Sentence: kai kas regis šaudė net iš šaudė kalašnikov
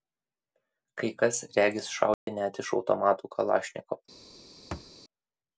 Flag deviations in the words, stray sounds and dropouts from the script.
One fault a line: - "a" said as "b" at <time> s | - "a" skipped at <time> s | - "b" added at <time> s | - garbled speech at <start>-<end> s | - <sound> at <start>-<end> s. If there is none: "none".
- dropout at 2.1-2.3 s
- "šaudė" said as "automatų" at 2.8 s
- thud at 4.7-4.9 s